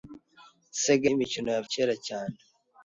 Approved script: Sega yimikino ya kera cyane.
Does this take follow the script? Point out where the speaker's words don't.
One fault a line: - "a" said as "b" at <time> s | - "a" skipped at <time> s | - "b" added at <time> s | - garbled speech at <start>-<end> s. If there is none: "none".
none